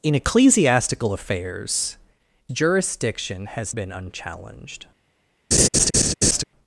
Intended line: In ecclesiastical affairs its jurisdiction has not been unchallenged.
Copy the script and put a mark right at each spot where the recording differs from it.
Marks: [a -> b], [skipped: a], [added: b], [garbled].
In ecclesiastical affairs [skipped: its] jurisdiction has [skipped: not] been unchallenged.